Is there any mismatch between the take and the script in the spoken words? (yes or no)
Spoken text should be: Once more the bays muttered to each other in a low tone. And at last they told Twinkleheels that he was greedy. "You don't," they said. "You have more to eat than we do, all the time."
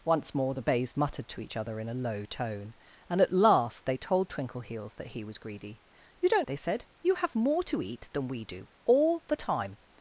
no